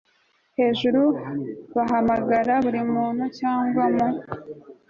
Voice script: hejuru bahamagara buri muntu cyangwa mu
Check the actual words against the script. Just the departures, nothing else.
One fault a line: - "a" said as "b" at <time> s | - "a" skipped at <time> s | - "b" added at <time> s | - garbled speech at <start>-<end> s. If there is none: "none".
none